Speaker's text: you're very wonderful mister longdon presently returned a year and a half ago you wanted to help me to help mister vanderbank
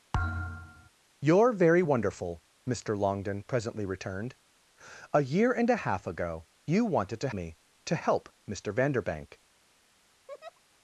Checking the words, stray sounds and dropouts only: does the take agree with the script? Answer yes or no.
no